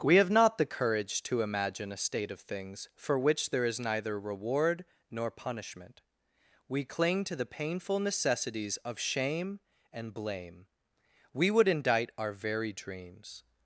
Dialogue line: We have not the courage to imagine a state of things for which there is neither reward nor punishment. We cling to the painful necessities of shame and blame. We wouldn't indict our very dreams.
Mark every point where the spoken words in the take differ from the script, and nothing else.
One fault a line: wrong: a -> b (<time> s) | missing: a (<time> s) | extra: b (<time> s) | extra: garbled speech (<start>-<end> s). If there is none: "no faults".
wrong: wouldn't -> would (11.5 s)